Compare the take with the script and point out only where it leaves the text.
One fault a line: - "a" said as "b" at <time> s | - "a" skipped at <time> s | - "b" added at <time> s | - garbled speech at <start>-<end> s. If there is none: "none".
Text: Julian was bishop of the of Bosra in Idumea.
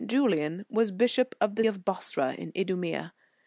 none